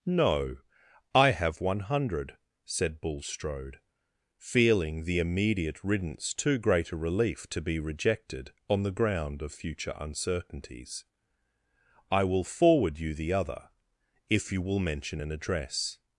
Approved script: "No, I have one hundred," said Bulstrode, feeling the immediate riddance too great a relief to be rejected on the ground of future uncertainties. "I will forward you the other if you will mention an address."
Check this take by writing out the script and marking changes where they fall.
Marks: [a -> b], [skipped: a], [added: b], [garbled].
"No, I have one hundred," said Bulstrode, feeling the immediate riddance too great a relief to be rejected on the ground of future uncertainties. "I will forward you the other if you will mention an address."